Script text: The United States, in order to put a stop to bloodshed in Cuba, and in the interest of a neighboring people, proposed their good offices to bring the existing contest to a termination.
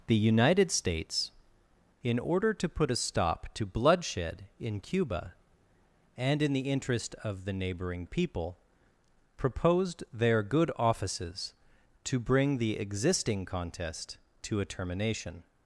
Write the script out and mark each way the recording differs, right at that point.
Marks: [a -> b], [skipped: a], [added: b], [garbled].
The United States, in order to put a stop to bloodshed in Cuba, and in the interest of [a -> the] neighboring people, proposed their good offices to bring the existing contest to a termination.